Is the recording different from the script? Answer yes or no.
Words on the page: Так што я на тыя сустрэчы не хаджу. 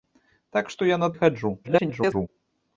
yes